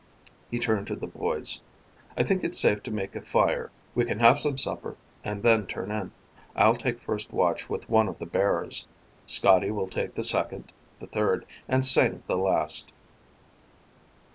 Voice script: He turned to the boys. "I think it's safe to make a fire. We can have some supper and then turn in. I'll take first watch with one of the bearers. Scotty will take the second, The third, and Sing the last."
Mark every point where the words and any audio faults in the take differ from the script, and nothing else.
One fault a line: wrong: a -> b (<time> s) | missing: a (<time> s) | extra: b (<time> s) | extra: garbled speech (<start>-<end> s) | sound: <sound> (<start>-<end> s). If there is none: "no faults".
no faults